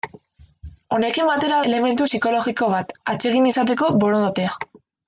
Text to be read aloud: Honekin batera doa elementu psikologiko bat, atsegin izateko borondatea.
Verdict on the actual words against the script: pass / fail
fail